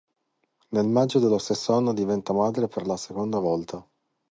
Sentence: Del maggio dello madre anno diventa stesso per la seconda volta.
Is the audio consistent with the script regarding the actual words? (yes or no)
no